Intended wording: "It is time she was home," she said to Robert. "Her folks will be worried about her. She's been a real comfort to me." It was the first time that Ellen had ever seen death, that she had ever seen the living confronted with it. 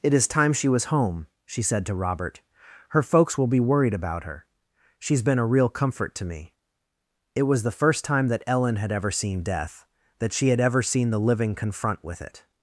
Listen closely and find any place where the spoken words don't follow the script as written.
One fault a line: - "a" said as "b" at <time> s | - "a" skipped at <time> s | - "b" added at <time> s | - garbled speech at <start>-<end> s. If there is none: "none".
- "confronted" said as "confront" at 11.5 s